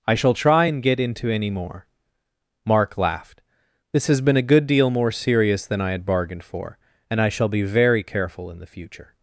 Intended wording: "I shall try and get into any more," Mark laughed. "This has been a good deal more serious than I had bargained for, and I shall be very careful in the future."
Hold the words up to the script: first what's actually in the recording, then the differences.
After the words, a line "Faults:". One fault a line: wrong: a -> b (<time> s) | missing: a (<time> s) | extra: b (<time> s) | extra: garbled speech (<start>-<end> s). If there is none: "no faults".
"I shall try and get into any more," Mark laughed. "This has been a good deal more serious than I had bargained for, and I shall be very careful in the future."
Faults:
no faults